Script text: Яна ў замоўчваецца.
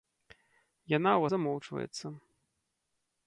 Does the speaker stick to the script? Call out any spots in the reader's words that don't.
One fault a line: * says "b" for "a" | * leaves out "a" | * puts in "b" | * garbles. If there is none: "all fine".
all fine